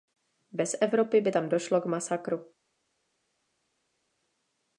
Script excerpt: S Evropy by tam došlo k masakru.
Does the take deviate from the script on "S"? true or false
true